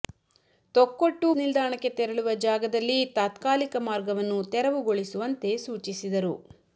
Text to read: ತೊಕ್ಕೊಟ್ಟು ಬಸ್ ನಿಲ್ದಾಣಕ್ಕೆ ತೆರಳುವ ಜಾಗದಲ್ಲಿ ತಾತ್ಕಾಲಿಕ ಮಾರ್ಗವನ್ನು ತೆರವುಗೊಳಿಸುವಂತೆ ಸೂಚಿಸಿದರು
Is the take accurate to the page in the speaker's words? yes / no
no